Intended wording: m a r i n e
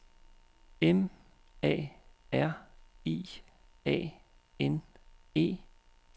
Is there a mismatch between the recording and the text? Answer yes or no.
yes